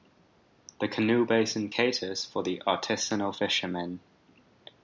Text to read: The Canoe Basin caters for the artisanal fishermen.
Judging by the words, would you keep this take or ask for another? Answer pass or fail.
pass